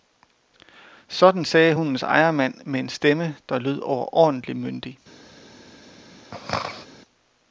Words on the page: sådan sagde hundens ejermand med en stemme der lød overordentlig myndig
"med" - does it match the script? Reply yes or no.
yes